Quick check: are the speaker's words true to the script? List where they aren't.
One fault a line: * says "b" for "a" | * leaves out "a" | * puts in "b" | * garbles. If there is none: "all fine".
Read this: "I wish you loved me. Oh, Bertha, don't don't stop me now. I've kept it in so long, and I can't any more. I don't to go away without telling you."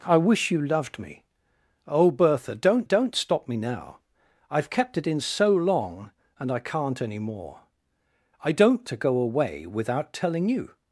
all fine